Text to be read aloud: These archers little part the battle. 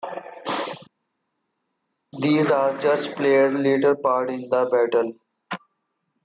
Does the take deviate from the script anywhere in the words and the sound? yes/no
yes